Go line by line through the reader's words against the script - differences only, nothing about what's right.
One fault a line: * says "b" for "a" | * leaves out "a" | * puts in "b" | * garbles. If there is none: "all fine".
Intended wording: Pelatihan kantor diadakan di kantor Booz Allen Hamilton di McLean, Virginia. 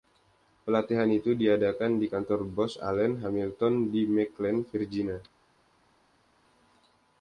* says "itu" for "kantor"